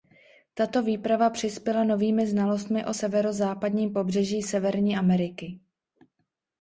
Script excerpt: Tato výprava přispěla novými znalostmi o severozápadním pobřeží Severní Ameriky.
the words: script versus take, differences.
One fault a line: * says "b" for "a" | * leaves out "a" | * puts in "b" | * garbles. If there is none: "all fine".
all fine